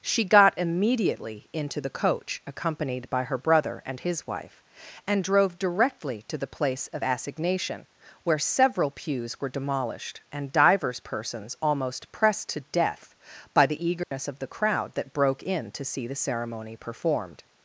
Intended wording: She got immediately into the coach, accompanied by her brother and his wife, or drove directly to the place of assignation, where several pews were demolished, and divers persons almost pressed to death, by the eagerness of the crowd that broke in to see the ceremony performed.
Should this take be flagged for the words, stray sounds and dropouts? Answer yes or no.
yes